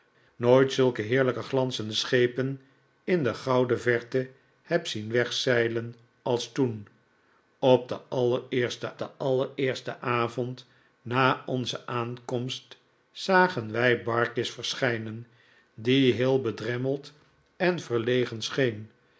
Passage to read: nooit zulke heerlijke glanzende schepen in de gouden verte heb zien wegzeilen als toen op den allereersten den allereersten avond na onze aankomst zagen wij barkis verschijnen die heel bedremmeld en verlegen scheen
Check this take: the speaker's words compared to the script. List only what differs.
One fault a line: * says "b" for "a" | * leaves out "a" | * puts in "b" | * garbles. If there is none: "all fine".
all fine